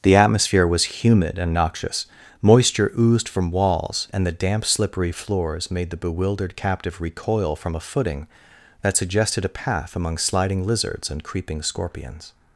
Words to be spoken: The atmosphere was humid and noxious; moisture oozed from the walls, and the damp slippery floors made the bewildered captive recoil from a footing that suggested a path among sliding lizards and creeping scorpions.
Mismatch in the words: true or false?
true